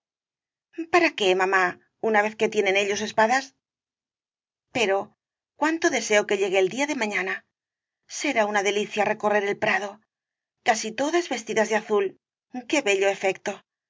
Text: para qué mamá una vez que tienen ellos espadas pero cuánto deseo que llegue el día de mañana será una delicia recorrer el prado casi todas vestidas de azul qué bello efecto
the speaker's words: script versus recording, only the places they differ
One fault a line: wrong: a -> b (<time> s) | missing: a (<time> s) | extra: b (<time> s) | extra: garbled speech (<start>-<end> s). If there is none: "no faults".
no faults